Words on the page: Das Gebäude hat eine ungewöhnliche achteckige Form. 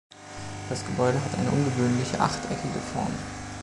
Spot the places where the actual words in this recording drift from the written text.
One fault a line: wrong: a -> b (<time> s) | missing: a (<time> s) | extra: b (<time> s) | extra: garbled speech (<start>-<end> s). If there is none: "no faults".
no faults